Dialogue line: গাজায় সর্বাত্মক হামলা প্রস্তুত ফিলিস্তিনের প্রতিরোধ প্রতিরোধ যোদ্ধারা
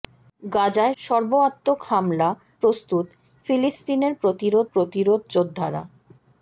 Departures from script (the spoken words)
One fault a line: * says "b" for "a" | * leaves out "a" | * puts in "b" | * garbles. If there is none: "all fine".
all fine